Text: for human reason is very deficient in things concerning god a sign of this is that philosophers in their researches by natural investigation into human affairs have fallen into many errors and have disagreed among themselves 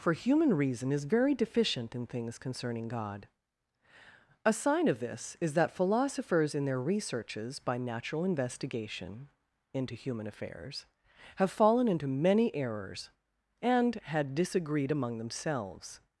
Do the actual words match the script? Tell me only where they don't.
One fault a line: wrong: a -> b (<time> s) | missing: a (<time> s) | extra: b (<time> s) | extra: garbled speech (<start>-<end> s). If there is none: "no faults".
wrong: have -> had (14.1 s)